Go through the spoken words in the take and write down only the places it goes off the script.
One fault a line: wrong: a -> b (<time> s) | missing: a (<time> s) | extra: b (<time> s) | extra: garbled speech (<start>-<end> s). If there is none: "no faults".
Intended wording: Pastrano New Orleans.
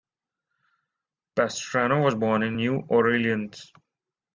extra: was born in (2.0 s)